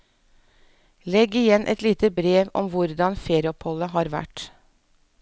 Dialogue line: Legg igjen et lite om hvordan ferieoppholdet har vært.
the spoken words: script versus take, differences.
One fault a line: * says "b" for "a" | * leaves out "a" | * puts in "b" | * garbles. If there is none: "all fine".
* puts in "brev"